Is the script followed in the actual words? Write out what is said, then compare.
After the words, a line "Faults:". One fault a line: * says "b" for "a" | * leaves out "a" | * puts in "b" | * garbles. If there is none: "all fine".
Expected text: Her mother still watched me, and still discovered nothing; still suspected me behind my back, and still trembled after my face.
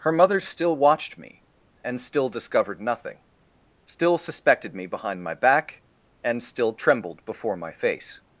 Her mother still watched me, and still discovered nothing; still suspected me behind my back, and still trembled before my face.
Faults:
* says "before" for "after"